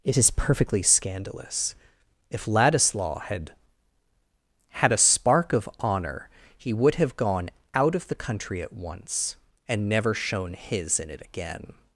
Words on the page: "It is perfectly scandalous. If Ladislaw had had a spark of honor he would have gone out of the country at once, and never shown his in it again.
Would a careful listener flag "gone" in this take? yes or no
no